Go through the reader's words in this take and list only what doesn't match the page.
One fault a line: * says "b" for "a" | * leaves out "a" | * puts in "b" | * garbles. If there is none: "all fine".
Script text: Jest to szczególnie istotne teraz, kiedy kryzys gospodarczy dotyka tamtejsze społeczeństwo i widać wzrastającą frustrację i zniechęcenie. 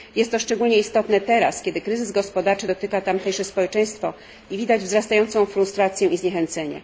all fine